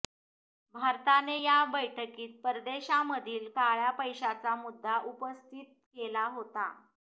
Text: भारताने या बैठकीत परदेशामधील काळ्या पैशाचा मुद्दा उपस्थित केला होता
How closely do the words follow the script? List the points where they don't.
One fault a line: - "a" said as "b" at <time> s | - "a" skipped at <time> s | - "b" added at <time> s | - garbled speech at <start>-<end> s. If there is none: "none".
none